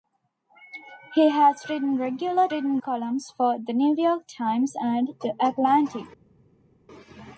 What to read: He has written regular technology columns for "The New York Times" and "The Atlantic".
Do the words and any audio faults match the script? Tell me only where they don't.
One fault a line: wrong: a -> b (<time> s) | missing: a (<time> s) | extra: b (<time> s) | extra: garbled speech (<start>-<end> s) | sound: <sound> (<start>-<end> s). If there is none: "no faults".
wrong: technology -> written (2.5 s)